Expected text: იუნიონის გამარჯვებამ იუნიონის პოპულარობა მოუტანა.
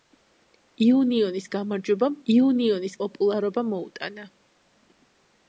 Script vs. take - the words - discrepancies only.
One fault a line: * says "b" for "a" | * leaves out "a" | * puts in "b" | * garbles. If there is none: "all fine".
all fine